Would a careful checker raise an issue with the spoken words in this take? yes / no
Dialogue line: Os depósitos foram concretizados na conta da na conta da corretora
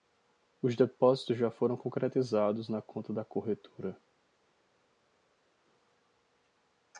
yes